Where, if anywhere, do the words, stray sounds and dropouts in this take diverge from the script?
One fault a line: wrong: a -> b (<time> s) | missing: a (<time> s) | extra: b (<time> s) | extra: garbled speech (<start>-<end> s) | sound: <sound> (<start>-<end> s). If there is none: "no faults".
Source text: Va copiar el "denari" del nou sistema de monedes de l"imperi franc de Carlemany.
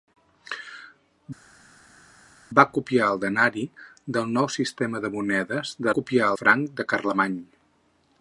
wrong: l"imperi -> copiar (6.0 s)